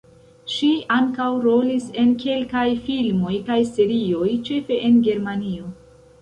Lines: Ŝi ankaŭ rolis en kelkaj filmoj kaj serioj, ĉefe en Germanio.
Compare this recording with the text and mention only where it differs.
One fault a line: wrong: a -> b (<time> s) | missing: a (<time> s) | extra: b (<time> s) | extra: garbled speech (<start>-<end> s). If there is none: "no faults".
no faults